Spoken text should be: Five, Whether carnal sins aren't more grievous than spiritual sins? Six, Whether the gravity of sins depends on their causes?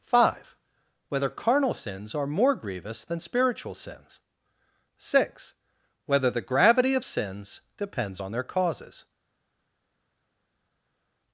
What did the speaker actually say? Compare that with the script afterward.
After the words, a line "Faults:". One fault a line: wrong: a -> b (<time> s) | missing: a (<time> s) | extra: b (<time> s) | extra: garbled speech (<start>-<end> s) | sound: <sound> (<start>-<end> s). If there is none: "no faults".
Five, Whether carnal sins are more grievous than spiritual sins? Six, Whether the gravity of sins depends on their causes?
Faults:
wrong: aren't -> are (2.1 s)